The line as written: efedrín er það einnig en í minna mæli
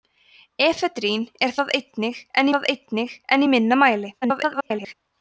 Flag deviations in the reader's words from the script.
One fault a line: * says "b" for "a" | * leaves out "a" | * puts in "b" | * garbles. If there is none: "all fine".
* puts in "það einnig en"
* garbles